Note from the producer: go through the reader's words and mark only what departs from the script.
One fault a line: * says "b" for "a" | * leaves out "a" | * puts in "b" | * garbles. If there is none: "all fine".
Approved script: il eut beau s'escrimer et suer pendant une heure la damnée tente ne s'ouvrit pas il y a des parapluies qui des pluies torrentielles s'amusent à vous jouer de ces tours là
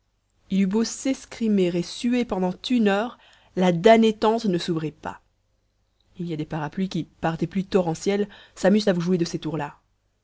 * puts in "par"